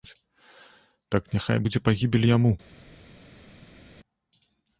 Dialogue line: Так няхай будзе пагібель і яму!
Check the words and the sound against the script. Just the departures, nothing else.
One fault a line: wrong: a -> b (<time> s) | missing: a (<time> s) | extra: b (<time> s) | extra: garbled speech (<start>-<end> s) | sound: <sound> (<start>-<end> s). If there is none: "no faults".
no faults